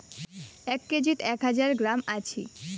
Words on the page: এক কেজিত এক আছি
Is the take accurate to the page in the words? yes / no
no